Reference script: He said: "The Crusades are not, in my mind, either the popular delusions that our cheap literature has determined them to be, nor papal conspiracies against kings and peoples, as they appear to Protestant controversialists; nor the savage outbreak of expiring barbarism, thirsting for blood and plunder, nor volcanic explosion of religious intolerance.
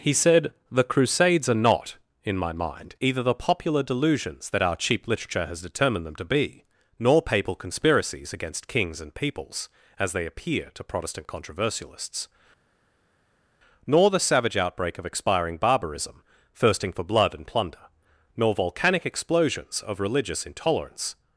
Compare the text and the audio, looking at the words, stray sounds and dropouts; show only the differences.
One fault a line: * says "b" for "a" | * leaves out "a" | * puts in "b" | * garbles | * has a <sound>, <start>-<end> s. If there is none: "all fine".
* says "explosions" for "explosion"